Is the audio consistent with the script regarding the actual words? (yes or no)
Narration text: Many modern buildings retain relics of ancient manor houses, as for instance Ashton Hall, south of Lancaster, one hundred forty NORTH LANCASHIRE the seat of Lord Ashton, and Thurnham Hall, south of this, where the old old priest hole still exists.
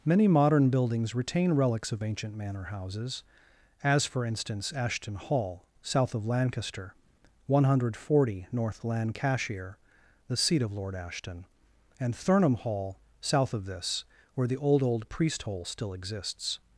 yes